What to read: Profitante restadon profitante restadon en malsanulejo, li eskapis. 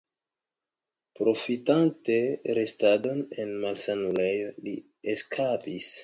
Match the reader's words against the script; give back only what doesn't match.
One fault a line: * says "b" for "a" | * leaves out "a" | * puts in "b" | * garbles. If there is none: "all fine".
* leaves out "profitante restadon"